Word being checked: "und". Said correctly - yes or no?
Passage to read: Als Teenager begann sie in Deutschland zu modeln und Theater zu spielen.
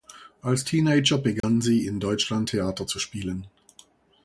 no